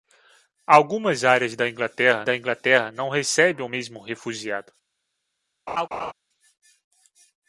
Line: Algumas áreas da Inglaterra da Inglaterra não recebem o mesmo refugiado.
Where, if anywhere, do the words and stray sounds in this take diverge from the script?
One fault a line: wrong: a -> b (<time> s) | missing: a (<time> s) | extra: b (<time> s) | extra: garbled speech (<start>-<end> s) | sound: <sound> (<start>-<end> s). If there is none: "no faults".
sound: laugh (5.7-6.1 s)